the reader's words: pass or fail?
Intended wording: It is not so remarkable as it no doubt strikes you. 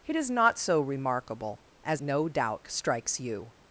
fail